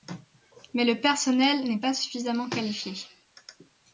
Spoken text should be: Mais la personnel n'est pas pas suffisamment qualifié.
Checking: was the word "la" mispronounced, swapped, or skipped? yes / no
yes